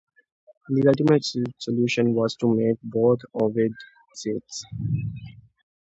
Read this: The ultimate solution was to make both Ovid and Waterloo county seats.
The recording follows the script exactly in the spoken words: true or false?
false